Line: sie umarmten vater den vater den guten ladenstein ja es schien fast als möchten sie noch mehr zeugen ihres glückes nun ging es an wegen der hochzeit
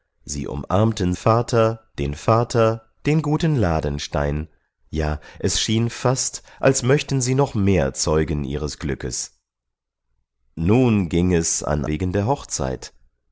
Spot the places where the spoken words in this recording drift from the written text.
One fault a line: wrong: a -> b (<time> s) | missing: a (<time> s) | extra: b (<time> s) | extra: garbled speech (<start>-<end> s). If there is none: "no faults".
no faults